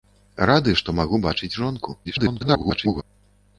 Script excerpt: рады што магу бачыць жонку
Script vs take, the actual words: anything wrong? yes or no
yes